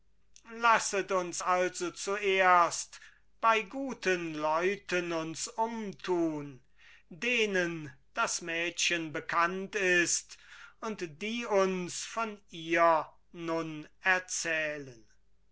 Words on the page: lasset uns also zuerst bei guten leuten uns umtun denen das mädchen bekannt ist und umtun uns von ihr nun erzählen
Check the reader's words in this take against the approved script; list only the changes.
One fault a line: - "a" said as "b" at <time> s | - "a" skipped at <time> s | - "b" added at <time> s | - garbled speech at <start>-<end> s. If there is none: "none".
- "umtun" said as "die" at 11.2 s